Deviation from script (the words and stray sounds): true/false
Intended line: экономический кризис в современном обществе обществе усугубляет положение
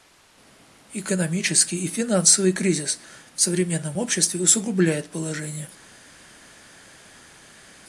true